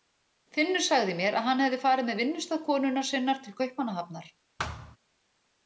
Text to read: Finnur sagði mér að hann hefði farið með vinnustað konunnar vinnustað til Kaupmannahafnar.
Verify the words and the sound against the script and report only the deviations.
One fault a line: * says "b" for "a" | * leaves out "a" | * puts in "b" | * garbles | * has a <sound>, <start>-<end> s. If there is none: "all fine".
* says "sinnar" for "vinnustað"
* has a thud, 4.6-5.0 s